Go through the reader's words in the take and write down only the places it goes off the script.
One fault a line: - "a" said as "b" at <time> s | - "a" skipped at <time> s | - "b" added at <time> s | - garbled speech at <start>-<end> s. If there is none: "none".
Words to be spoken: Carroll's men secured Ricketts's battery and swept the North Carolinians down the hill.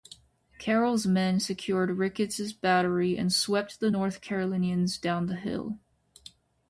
none